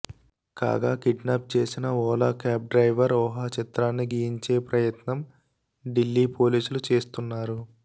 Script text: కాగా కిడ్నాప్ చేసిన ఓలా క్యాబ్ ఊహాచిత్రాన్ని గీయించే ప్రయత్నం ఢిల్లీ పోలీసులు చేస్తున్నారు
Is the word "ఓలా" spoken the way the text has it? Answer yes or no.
yes